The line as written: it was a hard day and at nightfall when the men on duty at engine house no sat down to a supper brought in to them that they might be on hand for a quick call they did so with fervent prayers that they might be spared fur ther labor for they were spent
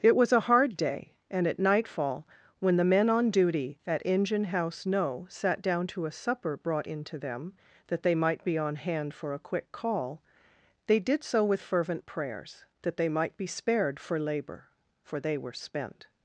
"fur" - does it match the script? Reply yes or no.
no